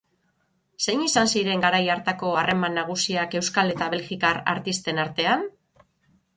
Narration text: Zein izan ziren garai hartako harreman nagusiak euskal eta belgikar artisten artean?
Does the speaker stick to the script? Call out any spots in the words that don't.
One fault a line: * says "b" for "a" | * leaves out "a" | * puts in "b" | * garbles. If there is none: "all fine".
all fine